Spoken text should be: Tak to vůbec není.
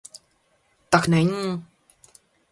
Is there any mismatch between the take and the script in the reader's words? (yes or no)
yes